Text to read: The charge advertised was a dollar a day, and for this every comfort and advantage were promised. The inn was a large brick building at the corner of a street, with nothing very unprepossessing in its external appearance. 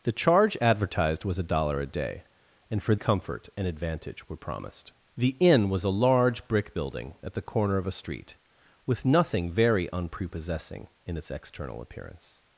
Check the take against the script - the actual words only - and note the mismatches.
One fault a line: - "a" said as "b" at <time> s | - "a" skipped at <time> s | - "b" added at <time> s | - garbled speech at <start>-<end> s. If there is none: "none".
- "this every" skipped at 3.0 s